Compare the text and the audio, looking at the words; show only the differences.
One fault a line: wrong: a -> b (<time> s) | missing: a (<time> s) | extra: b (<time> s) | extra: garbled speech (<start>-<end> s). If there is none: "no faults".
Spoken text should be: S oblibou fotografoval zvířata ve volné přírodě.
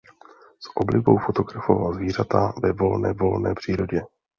extra: volné (3.1 s)